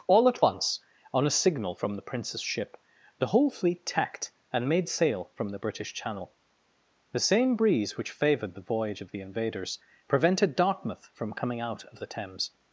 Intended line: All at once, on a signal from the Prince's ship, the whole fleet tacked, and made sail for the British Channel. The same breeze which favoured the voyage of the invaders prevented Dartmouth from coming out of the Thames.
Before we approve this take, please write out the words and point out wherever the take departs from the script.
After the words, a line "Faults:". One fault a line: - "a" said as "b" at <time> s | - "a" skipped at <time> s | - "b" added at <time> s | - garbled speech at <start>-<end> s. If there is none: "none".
All at once, on a signal from the Prince's ship, the whole fleet tacked, and made sail from the British Channel. The same breeze which favoured the voyage of the invaders prevented Dartmouth from coming out of the Thames.
Faults:
- "for" said as "from" at 5.3 s